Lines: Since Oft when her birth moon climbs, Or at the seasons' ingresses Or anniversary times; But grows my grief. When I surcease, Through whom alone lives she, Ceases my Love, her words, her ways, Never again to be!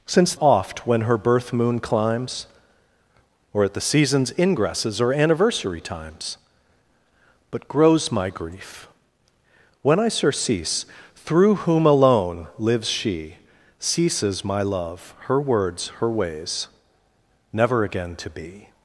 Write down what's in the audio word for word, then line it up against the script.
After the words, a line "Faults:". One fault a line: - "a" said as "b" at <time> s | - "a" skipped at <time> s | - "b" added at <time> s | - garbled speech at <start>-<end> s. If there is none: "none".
Since Oft when her birth moon climbs, Or at the seasons' ingresses Or anniversary times; But grows my grief. When I surcease, Through whom alone lives she, Ceases my Love, her words, her ways, Never again to be!
Faults:
none